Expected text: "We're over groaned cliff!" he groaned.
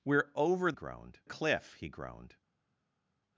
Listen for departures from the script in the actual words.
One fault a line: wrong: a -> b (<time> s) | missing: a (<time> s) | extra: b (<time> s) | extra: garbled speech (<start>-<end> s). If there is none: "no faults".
no faults